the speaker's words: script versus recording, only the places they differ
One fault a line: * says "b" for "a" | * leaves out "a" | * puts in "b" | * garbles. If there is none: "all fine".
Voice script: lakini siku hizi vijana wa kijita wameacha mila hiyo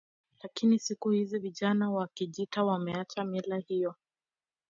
all fine